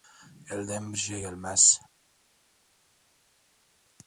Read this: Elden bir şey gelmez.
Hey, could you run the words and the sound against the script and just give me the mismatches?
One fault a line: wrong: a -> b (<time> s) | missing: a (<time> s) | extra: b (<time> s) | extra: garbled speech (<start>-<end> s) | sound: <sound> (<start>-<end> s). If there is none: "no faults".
no faults